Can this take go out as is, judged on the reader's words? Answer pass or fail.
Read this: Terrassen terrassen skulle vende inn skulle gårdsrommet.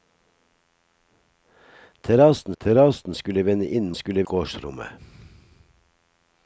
pass